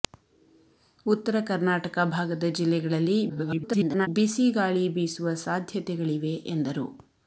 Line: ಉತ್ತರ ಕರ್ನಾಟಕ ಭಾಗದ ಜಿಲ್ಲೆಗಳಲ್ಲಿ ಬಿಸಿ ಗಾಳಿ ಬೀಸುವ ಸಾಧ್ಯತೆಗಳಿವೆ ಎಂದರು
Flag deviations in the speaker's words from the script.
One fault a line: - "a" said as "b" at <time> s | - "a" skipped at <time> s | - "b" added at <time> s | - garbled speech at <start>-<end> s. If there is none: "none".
- garbled speech at 3.3-4.1 s